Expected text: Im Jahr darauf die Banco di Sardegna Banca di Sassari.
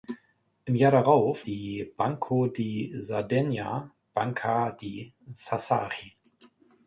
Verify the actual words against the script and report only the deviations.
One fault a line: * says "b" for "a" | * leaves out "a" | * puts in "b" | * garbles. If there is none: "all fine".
all fine